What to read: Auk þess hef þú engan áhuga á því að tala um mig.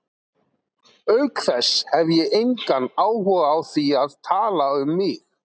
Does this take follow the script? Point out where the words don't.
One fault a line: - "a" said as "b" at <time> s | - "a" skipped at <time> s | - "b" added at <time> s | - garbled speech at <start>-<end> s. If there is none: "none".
- "þú" said as "ég" at 2.1 s